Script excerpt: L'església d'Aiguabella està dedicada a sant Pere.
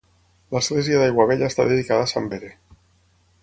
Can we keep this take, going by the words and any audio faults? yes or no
yes